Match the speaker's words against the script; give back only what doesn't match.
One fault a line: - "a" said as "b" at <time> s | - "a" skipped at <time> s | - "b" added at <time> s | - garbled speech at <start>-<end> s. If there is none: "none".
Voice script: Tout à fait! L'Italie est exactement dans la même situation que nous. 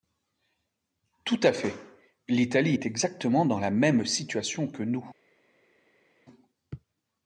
none